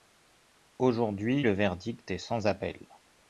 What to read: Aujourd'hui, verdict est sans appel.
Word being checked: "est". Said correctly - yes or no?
yes